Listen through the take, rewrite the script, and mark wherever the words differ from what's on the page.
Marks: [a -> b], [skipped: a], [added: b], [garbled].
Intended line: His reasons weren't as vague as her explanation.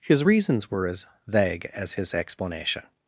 His reasons [weren't -> were] as vague as [her -> his] explanation.